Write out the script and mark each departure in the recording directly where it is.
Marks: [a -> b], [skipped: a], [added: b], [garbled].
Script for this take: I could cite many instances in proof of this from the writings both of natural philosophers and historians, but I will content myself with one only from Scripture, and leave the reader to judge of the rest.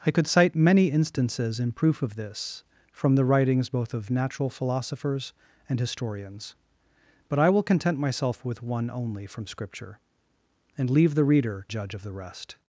I could cite many instances in proof of this from the writings both of natural philosophers and historians, but I will content myself with one only from Scripture, and leave the reader [skipped: to] judge of the rest.